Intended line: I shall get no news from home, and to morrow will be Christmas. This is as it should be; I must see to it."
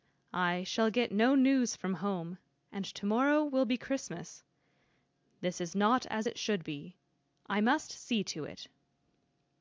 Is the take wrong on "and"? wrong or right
right